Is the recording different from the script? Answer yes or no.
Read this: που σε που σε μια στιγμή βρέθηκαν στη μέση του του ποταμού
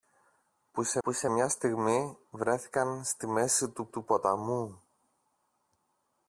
no